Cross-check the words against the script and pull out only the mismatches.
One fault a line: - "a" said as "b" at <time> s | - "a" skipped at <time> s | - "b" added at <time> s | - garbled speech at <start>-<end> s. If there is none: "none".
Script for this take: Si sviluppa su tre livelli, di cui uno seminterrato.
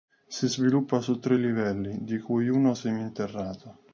none